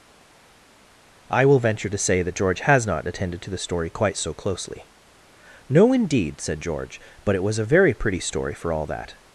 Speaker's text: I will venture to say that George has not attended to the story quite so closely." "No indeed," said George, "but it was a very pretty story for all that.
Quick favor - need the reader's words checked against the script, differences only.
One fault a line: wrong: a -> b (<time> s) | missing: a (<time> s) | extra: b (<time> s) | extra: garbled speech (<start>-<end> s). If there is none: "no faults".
no faults